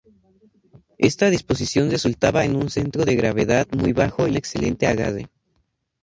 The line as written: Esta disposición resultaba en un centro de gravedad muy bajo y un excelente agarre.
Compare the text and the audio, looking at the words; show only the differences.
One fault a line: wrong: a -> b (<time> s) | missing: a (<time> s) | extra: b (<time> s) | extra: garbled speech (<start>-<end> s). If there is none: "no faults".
missing: un (4.4 s)